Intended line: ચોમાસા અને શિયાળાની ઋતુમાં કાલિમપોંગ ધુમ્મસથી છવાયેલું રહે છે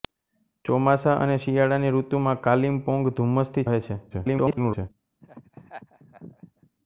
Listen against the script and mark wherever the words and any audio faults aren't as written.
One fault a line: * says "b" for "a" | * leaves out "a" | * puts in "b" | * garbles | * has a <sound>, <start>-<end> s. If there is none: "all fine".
* leaves out "છવાયેલું"
* garbles
* has a laugh, 5.2-6.7 s